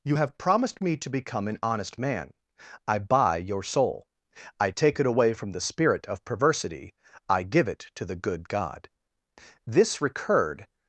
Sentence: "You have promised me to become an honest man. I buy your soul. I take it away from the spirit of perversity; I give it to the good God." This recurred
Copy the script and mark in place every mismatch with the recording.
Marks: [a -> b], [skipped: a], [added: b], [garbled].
"You have promised me to become an honest man. I buy your soul. I take it away from the spirit of perversity; I give it to the good God." This recurred